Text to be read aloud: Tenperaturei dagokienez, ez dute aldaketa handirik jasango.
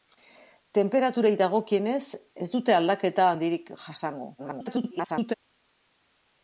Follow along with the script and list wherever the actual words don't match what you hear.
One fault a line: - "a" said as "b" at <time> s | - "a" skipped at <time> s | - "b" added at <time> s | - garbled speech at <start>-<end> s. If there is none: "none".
- garbled speech at 4.4-5.3 s